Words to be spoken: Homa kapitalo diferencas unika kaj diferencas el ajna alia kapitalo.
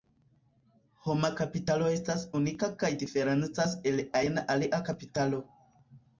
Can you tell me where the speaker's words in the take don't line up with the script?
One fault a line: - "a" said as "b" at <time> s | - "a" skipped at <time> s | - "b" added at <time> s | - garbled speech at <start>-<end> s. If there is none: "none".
- "diferencas" said as "estas" at 2.0 s